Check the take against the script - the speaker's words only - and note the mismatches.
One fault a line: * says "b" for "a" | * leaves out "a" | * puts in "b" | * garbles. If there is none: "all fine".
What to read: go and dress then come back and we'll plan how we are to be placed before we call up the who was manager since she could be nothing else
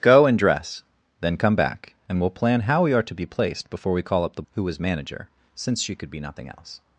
all fine